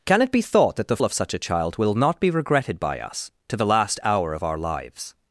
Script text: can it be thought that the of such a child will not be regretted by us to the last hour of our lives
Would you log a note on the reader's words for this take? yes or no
no